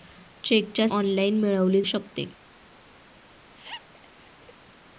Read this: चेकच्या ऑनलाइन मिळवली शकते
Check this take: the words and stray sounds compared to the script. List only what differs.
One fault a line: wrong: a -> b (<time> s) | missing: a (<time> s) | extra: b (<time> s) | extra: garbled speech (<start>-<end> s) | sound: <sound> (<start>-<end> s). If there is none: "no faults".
sound: laugh (3.6-4.5 s)